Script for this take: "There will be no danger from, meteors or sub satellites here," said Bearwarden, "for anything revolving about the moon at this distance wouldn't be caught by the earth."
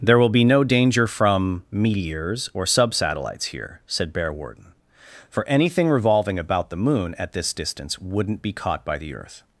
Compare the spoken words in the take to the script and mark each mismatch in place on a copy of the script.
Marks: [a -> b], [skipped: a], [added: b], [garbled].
"There will be no danger from, meteors or sub satellites here," said Bearwarden, "for anything revolving about the moon at this distance wouldn't be caught by the earth."